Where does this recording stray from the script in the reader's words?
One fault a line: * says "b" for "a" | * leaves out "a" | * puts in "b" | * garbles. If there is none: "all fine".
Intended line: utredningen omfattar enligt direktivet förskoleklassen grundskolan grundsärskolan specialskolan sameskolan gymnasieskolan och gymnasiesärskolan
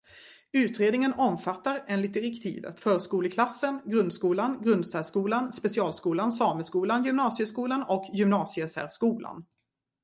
all fine